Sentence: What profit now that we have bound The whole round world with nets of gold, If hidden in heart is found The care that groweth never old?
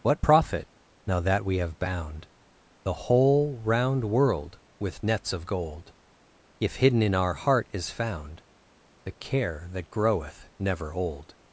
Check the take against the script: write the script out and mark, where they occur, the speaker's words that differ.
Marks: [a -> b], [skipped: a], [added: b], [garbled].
What profit now that we have bound The whole round world with nets of gold, If hidden in [added: our] heart is found The care that groweth never old?